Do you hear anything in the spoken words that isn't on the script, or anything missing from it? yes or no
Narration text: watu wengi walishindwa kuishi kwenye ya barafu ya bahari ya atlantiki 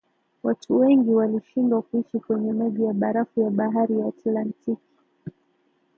yes